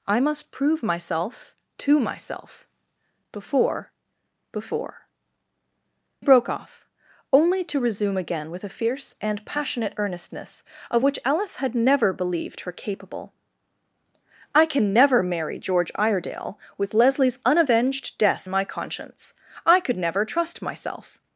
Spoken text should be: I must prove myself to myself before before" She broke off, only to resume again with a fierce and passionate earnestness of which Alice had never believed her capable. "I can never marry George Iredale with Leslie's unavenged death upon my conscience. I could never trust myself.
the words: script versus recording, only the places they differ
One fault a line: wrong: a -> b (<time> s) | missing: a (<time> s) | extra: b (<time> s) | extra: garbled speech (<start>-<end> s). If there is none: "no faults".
missing: She (5.1 s)
missing: upon (18.5 s)